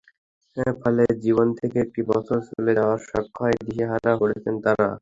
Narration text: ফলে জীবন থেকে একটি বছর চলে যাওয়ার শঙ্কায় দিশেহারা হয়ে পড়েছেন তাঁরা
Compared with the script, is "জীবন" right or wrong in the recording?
right